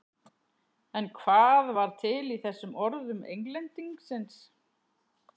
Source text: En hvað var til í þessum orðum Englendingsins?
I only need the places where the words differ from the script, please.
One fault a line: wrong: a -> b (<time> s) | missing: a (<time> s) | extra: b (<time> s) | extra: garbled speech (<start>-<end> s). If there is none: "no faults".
no faults